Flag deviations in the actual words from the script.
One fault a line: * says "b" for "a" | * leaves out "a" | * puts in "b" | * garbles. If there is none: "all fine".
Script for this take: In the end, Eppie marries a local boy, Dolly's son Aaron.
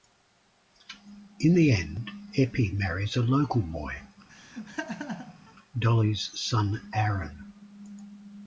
all fine